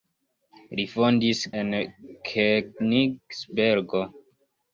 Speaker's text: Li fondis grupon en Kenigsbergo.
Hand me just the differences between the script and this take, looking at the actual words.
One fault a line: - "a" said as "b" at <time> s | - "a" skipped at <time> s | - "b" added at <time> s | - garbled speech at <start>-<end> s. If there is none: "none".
- "grupon" skipped at 1.4 s